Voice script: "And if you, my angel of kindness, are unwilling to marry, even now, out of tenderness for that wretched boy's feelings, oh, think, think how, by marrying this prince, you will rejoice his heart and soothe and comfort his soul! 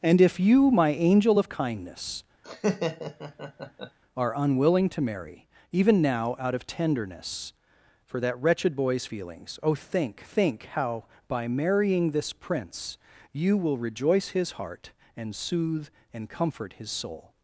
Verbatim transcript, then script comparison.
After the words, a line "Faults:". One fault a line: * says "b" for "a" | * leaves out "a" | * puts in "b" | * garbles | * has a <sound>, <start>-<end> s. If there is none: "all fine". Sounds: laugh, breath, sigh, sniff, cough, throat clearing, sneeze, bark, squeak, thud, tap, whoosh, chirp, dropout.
"And if you, my angel of kindness, are unwilling to marry, even now, out of tenderness for that wretched boy's feelings, oh, think, think how, by marrying this prince, you will rejoice his heart and soothe and comfort his soul!
Faults:
* has a laugh, 2.4-4.0 s